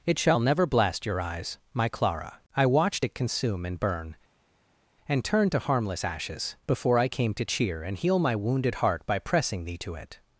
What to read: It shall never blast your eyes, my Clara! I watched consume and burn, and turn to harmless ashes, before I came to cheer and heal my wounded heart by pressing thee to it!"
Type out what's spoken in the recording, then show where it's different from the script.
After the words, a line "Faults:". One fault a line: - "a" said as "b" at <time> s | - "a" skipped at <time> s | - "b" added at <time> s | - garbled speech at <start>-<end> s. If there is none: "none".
It shall never blast your eyes, my Clara! I watched it consume and burn, and turn to harmless ashes, before I came to cheer and heal my wounded heart by pressing thee to it!"
Faults:
- "it" added at 3.0 s